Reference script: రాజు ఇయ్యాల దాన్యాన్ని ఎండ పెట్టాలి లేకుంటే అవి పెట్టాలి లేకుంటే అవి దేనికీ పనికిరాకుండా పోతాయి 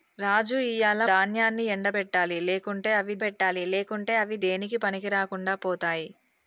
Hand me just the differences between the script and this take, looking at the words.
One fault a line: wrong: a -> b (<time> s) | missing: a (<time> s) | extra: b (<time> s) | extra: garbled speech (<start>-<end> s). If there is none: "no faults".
no faults